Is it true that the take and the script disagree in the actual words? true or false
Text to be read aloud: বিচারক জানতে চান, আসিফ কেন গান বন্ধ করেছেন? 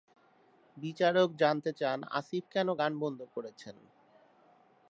false